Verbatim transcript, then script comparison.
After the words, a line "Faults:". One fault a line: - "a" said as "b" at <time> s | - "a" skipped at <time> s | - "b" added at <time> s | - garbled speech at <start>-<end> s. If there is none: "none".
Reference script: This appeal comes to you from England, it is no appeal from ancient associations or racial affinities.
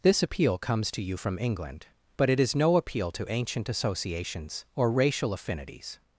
This appeal comes to you from England, but it is no appeal to ancient associations or racial affinities.
Faults:
- "but" added at 2.2 s
- "from" said as "to" at 3.1 s